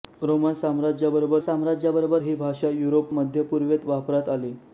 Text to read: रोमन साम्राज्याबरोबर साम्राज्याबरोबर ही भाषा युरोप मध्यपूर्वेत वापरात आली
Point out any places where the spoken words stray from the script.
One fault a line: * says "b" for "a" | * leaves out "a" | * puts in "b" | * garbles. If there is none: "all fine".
all fine